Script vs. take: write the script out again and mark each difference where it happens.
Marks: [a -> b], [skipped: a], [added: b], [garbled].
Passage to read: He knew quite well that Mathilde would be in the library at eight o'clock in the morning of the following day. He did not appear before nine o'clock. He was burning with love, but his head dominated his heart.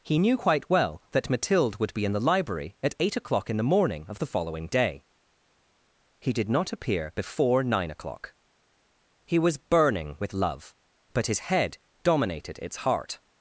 He knew quite well that Mathilde would be in the library at eight o'clock in the morning of the following day. He did not appear before nine o'clock. He was burning with love, but his head dominated [his -> its] heart.